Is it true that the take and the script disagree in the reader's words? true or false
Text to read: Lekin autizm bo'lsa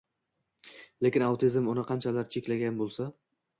true